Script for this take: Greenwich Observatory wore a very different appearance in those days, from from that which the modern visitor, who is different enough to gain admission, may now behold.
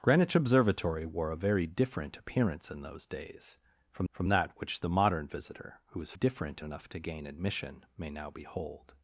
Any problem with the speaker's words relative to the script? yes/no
no